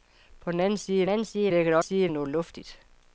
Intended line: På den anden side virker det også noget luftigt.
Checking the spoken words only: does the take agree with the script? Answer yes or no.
no